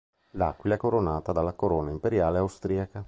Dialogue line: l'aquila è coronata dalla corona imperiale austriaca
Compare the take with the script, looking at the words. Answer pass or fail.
pass